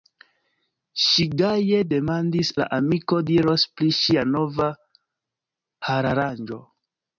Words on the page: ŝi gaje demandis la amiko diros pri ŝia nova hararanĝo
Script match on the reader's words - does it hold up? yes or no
yes